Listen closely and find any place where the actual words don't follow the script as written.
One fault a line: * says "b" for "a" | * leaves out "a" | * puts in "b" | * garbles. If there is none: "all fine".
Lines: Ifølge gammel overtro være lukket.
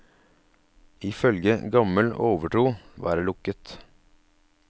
all fine